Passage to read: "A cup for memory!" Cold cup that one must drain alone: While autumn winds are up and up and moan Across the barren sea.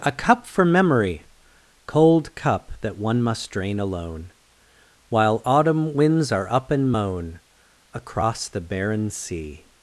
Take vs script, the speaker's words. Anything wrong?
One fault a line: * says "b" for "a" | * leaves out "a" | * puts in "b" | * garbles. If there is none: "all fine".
* leaves out "up and"